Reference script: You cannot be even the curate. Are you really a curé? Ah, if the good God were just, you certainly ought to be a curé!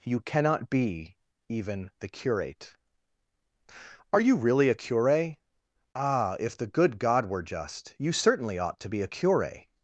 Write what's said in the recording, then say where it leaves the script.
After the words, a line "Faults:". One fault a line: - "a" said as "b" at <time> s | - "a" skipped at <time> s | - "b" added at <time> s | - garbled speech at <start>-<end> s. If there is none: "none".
You cannot be even the curate. Are you really a curé? Ah, if the good God were just, you certainly ought to be a curé!
Faults:
none